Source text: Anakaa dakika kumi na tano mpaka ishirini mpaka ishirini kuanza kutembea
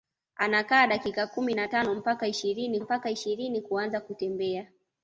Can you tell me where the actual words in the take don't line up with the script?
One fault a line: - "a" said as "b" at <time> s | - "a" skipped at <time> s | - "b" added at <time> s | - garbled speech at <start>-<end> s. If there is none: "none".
none